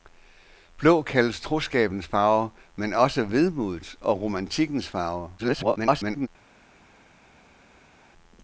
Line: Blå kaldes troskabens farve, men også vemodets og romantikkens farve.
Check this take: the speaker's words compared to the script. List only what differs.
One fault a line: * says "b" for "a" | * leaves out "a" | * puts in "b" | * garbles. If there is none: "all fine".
* garbles